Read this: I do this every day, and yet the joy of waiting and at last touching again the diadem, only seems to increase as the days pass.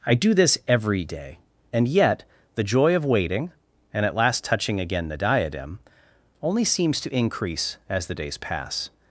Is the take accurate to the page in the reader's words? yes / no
yes